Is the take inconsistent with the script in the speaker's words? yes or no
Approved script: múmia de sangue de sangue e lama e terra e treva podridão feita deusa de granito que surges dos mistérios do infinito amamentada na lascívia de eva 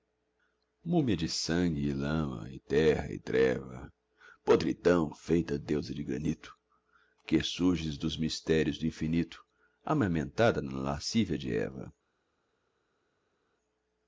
yes